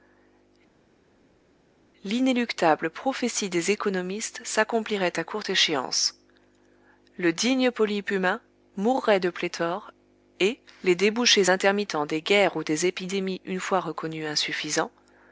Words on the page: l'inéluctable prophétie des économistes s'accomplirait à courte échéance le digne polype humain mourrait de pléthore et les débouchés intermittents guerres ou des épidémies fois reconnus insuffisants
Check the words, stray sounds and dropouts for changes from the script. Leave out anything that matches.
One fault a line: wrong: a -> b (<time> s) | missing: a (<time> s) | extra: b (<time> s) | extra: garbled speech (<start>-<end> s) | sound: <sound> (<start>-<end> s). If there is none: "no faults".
extra: des (12.1 s)
extra: une (13.4 s)